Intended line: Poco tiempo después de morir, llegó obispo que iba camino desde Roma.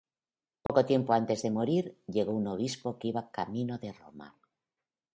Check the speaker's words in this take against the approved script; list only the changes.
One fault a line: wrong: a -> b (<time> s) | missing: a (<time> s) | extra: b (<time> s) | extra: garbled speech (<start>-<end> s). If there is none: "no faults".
wrong: después -> antes (1.1 s)
extra: un (2.3 s)
wrong: desde -> de (3.8 s)